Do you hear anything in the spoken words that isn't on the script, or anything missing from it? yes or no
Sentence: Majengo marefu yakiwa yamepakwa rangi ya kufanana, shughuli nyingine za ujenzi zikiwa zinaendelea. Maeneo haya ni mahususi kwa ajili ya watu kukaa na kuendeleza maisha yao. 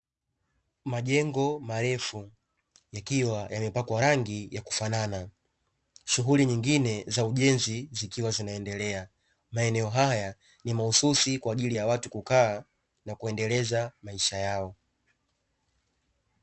no